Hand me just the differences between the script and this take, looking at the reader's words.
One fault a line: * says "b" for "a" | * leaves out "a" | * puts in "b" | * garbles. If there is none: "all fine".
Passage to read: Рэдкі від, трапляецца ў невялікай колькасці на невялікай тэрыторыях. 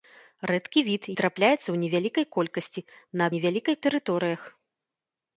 all fine